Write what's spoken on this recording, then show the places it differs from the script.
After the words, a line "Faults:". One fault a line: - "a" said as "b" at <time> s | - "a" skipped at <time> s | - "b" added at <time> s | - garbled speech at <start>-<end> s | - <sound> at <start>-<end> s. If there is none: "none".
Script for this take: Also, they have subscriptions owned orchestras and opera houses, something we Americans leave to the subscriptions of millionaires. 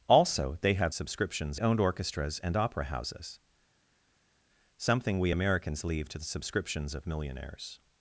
Also, they have subscriptions owned orchestras and opera houses, something we Americans leave to the subscriptions of millionaires.
Faults:
none